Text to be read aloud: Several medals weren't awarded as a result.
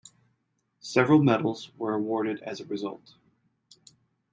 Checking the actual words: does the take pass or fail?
fail